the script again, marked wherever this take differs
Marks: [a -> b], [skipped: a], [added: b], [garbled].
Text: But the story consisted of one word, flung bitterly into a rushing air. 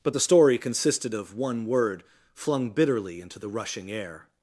But the story consisted of one word, flung bitterly into [a -> the] rushing air.